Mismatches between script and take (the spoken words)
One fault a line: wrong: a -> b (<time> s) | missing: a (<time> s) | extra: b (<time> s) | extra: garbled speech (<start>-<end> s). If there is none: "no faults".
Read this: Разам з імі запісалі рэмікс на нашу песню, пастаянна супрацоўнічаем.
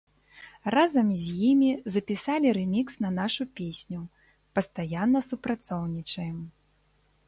no faults